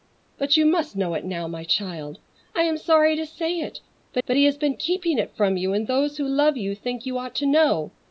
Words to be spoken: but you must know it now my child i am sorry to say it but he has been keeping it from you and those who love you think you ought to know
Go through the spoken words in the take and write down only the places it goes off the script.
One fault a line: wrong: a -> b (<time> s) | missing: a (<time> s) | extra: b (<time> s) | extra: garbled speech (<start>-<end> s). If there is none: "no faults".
extra: but (4.3 s)